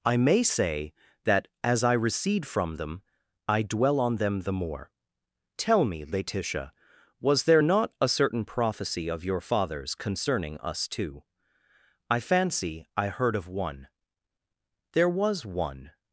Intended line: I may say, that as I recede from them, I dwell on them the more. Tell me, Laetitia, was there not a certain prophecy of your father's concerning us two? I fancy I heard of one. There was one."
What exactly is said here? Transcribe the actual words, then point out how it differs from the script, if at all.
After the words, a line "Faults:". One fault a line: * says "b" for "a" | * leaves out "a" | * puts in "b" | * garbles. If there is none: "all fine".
I may say, that as I recede from them, I dwell on them the more. Tell me, Laetitia, was there not a certain prophecy of your father's concerning us two? I fancy I heard of one. There was one."
Faults:
all fine